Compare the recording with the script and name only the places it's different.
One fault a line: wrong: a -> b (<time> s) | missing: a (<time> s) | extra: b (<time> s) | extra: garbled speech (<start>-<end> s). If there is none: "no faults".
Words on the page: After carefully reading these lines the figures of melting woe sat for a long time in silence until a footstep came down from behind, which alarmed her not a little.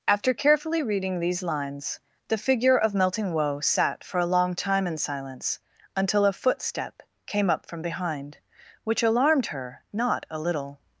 wrong: figures -> figure (2.4 s)
wrong: down -> up (7.5 s)